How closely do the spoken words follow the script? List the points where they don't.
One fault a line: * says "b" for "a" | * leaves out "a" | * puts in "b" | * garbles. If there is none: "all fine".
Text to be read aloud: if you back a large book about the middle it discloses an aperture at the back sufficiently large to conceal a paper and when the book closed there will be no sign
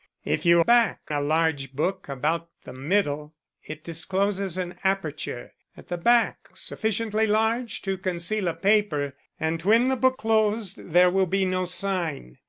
all fine